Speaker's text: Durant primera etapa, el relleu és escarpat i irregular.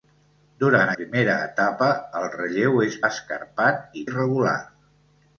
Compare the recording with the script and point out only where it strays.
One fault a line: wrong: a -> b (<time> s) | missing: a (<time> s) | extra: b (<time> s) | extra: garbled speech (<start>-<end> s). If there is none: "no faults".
no faults